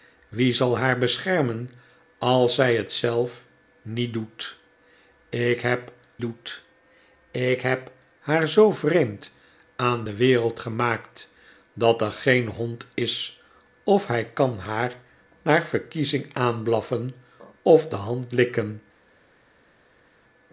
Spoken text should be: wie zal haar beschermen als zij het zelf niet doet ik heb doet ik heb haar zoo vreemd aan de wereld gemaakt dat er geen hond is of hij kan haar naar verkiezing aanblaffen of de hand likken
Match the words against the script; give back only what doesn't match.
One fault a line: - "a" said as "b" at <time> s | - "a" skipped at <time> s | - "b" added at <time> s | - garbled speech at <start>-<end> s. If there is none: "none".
none